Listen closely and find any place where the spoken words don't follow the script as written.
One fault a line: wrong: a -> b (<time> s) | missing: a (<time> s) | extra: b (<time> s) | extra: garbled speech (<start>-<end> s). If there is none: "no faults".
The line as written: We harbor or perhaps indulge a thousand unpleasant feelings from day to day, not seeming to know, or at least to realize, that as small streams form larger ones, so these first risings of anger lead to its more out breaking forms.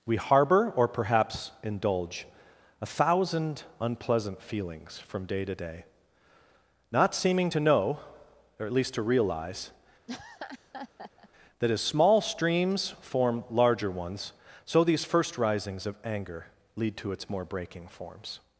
missing: out (17.4 s)